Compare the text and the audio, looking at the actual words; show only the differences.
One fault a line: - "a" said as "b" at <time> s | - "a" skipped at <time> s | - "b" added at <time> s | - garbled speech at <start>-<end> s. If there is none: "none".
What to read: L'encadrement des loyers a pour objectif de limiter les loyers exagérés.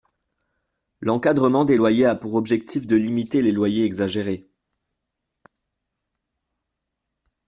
none